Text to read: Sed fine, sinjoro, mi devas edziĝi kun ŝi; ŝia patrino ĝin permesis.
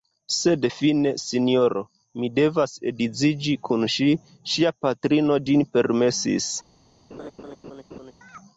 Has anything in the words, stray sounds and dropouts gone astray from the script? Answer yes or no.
yes